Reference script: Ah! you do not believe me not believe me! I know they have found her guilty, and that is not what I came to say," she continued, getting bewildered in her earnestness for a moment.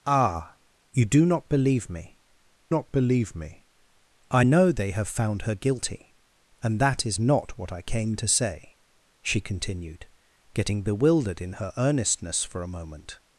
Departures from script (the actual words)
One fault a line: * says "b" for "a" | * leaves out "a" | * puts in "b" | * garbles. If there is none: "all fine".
all fine